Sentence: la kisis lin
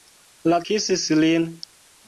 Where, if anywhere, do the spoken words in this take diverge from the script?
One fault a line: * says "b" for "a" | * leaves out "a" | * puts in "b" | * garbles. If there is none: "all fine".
all fine